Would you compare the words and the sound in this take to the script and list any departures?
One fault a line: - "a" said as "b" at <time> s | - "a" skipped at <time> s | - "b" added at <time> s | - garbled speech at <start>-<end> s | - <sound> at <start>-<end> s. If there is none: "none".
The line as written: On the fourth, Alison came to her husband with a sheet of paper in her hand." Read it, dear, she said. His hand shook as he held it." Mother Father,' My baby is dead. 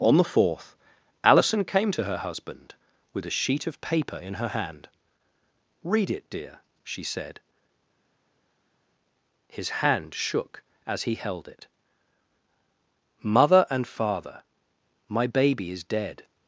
- "and" added at 13.7 s